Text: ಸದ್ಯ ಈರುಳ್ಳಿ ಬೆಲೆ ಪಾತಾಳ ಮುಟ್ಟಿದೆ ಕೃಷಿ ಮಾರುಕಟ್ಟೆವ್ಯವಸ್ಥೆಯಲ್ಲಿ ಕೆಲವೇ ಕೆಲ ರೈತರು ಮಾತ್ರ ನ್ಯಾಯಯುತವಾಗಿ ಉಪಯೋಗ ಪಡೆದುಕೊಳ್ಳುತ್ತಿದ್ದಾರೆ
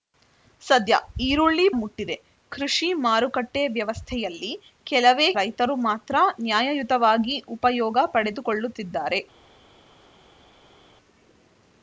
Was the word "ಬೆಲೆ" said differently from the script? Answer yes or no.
yes